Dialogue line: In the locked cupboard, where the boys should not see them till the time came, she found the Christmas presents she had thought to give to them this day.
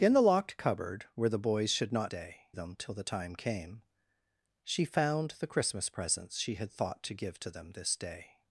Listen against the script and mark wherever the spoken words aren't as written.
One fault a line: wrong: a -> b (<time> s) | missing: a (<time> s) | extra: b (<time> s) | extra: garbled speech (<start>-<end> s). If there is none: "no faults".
wrong: see -> day (2.1 s)